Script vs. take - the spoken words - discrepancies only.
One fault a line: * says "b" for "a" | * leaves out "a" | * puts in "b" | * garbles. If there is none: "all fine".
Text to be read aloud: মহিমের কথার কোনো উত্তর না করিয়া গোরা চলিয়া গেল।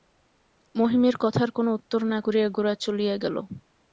all fine